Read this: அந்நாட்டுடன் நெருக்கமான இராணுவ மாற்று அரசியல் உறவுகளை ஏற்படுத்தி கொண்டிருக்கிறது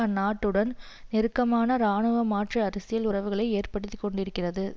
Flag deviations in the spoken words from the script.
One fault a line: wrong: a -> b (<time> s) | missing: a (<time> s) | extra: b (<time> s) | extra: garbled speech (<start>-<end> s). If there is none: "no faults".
no faults